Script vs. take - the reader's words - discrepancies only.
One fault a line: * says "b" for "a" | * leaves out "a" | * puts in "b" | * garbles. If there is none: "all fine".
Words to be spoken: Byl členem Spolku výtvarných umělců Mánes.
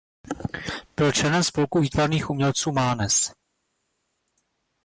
all fine